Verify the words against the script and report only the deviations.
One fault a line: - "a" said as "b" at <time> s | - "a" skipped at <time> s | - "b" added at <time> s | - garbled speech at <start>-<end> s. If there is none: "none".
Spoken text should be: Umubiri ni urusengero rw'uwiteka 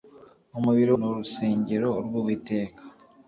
none